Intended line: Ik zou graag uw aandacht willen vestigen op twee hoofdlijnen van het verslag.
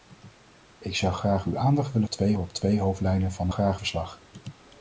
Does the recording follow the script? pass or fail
fail